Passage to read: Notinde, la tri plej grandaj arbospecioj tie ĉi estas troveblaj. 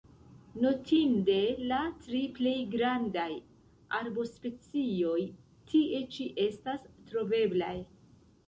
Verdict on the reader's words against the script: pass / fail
pass